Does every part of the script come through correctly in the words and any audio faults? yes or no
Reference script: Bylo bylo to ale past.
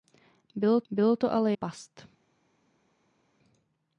yes